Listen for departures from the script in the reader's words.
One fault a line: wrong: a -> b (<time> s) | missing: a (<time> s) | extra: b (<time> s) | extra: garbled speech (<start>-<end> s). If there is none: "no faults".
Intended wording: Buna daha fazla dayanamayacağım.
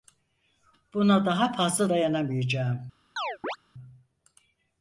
no faults